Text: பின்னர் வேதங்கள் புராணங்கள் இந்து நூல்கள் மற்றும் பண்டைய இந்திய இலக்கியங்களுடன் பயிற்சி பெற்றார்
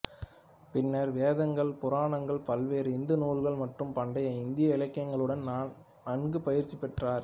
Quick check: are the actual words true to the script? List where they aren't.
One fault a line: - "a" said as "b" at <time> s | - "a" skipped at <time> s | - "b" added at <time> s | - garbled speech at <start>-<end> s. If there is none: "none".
- "பல்வேறு" added at 2.5 s
- "நன்கு" added at 6.1 s